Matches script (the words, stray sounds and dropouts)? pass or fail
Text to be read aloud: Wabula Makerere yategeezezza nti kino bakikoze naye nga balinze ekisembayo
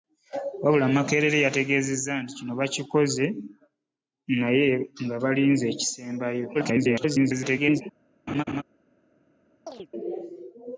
fail